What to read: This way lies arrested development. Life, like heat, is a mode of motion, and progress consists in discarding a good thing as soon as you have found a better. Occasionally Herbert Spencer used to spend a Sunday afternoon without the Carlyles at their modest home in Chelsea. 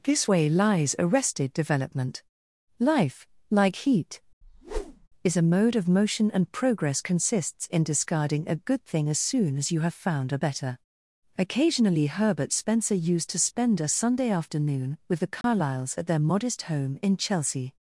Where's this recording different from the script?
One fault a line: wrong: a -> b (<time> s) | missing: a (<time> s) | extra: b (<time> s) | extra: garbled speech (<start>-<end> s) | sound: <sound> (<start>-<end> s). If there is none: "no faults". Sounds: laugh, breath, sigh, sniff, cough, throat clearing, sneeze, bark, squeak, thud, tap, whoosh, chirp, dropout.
sound: whoosh (4.4-5.1 s)
wrong: without -> with (15.1 s)
sound: dropout (15.4-15.4 s)